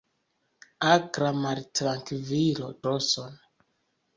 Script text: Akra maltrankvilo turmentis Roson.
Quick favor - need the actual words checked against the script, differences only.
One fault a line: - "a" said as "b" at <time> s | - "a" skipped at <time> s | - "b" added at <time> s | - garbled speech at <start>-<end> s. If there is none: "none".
- "turmentis" skipped at 2.7 s